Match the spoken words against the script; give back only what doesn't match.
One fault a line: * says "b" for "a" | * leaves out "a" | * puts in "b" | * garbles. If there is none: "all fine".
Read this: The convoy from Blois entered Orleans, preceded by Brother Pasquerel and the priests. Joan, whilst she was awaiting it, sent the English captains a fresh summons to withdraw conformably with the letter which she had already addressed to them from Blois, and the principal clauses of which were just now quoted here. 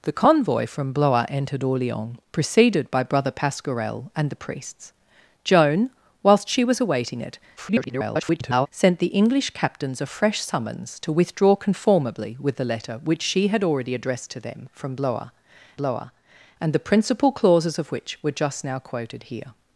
* garbles
* puts in "Blois"